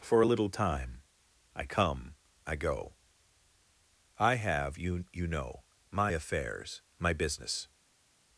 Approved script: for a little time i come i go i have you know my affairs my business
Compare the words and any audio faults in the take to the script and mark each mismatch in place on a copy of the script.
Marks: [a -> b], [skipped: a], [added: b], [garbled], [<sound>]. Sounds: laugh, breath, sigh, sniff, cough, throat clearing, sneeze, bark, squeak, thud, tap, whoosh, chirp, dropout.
for a little time i come i go i have you [added: you] know my affairs my business